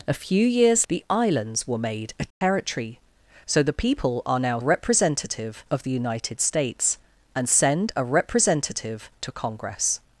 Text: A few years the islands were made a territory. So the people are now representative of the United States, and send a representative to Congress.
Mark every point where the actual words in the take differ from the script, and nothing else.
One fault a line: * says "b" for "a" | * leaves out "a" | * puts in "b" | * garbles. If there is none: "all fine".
all fine